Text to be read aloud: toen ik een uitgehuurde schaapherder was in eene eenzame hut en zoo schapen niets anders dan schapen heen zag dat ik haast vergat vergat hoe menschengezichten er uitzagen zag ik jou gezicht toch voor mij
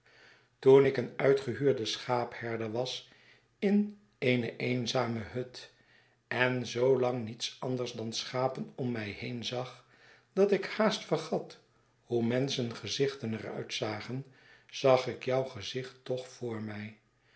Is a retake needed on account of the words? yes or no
yes